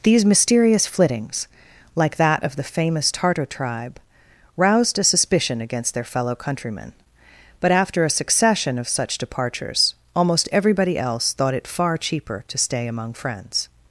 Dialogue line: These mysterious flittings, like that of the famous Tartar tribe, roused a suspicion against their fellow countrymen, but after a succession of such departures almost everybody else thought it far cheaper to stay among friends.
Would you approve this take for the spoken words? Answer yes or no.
yes